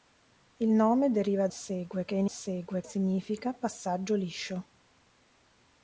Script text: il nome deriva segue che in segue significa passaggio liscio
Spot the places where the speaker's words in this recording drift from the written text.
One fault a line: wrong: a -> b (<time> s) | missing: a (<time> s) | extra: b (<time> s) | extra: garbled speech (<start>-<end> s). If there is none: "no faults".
no faults